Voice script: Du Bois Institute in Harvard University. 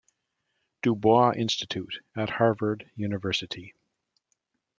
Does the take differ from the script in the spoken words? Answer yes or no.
yes